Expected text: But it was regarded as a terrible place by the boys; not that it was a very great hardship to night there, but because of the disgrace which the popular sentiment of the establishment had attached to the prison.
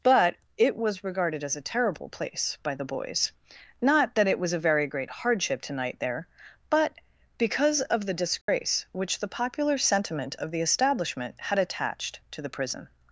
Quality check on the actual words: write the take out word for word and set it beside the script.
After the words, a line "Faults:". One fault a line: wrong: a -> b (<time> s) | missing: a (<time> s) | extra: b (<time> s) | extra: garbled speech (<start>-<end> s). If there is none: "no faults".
But it was regarded as a terrible place by the boys; not that it was a very great hardship to night there, but because of the disgrace which the popular sentiment of the establishment had attached to the prison.
Faults:
no faults